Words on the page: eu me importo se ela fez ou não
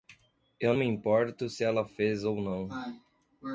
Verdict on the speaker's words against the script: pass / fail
pass